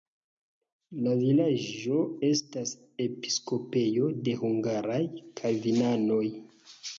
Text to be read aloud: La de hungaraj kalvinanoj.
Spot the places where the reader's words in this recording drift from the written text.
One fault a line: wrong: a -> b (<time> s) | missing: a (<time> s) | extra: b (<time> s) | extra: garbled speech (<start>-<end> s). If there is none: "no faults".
extra: vilaĝo estas episkopejo (1.2 s)